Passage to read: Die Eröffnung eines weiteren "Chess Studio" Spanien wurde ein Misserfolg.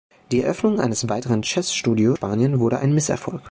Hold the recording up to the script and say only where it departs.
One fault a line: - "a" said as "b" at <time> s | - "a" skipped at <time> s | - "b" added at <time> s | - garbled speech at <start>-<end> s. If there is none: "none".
none